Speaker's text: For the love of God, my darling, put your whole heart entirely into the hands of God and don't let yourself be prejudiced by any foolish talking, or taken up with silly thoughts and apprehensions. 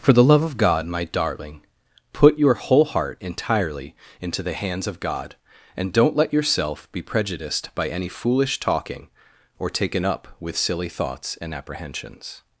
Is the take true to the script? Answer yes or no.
yes